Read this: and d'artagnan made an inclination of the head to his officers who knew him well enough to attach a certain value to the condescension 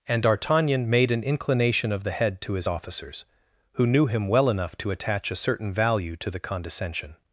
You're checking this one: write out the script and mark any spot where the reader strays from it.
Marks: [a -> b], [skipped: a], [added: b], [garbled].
and d'artagnan made an inclination of the head to his officers who knew him well enough to attach a certain value to the condescension